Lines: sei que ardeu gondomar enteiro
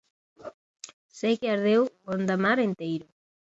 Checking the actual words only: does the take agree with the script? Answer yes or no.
yes